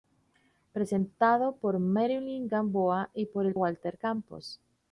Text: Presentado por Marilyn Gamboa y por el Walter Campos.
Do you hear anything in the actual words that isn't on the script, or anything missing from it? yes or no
no